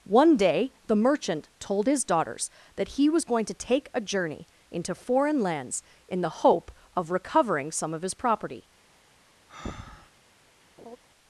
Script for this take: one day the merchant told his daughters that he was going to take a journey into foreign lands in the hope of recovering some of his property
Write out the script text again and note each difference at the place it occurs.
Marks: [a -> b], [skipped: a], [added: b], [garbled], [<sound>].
one day the merchant told his daughters that he was going to take a journey into foreign lands in the hope of recovering some of his property [breath] [laugh]